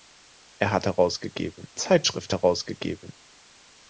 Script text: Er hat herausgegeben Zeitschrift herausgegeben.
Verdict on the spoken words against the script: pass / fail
pass